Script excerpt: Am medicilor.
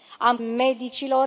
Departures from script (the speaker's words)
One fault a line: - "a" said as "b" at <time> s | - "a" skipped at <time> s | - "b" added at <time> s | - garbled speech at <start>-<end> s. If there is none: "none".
none